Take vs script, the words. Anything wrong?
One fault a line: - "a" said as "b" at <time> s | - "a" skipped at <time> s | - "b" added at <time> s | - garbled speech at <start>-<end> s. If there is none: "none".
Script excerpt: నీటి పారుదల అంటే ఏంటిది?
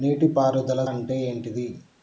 none